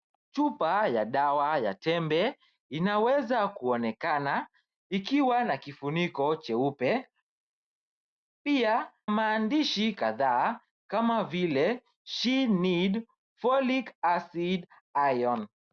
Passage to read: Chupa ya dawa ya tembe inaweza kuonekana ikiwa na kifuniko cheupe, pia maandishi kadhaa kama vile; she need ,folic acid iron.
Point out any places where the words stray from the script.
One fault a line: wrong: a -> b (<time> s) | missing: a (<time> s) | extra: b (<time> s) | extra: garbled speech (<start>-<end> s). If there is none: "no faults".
no faults